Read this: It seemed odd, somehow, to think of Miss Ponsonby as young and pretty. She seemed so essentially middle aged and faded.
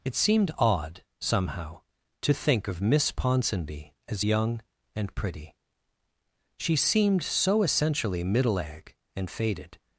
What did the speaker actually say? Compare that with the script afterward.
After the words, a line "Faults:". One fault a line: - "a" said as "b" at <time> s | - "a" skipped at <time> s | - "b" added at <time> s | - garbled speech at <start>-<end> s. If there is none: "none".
It seemed odd, somehow, to think of Miss Ponsonby as young and pretty. She seemed so essentially middle ag and faded.
Faults:
- "aged" said as "ag" at 8.6 s